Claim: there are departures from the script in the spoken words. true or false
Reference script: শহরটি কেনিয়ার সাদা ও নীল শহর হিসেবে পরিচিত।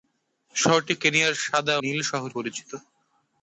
true